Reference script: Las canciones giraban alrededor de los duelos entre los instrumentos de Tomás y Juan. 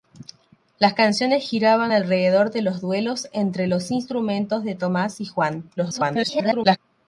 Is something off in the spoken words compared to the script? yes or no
yes